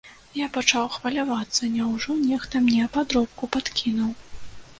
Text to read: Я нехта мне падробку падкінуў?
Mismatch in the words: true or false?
true